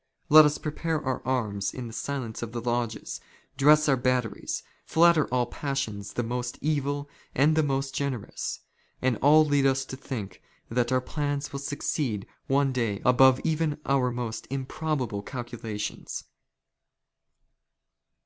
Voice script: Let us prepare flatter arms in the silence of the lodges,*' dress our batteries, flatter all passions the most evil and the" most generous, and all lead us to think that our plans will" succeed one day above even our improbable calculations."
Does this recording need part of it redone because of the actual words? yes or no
yes